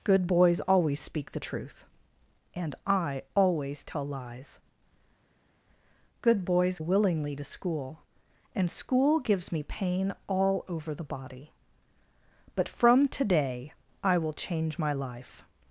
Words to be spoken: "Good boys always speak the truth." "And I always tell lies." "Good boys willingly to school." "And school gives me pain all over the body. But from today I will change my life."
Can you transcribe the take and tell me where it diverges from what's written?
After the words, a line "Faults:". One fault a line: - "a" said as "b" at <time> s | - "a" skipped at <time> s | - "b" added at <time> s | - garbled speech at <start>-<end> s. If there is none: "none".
"Good boys always speak the truth." "And I always tell lies." "Good boys willingly to school." "And school gives me pain all over the body. But from today I will change my life."
Faults:
none